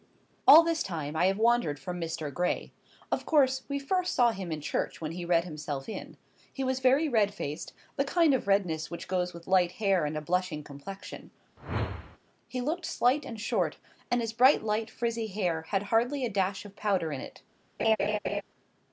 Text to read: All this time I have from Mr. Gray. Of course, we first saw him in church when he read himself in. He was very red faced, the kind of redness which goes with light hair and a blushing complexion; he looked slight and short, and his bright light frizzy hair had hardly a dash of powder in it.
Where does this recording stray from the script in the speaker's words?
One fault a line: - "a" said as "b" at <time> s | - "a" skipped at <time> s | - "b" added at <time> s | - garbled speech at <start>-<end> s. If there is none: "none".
- "wandered" added at 1.4 s